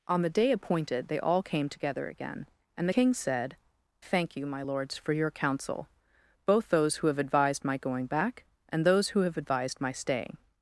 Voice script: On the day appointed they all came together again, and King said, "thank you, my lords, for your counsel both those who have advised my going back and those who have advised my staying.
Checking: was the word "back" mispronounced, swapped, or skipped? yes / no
no